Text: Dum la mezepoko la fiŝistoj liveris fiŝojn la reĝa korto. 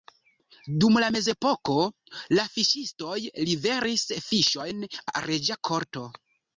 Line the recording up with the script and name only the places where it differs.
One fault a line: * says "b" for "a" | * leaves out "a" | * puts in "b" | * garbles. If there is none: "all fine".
all fine